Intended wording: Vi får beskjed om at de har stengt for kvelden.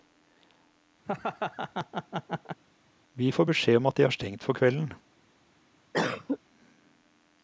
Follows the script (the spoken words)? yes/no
yes